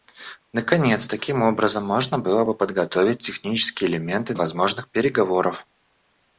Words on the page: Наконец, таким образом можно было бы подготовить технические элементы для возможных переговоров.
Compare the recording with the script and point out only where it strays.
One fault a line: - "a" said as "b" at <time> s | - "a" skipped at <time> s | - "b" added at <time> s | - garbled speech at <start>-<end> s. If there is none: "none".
- "для" skipped at 4.3 s